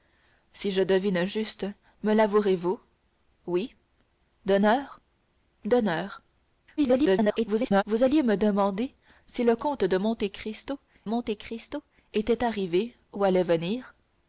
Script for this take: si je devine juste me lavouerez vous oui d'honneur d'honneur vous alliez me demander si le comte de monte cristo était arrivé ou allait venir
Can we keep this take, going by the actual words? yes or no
no